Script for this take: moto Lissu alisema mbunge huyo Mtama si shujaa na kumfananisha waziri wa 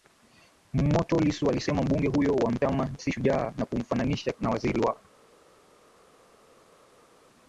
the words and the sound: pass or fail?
fail